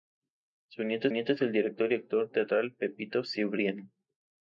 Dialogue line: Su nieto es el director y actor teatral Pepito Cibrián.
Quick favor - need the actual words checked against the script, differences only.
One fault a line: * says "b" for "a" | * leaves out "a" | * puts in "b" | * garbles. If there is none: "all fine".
* puts in "nieto"